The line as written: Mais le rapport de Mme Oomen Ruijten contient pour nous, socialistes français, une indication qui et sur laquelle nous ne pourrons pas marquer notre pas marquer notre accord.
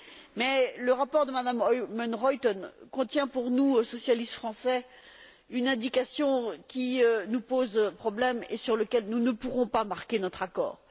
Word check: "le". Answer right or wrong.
right